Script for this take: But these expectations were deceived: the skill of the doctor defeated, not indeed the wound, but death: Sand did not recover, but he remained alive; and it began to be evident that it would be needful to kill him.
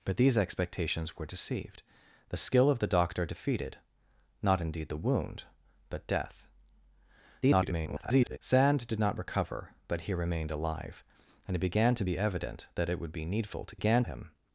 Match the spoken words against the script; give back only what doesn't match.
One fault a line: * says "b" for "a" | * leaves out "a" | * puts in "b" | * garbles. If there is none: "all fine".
* garbles
* says "began" for "kill"